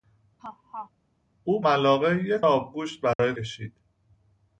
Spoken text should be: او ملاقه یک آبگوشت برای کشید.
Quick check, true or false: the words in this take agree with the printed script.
true